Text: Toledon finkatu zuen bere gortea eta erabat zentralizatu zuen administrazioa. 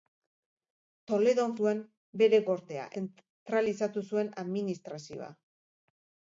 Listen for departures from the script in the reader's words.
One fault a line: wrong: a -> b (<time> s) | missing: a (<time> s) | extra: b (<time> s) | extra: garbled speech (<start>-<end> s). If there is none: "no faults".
missing: finkatu (1.5 s)
missing: eta erabat (2.9 s)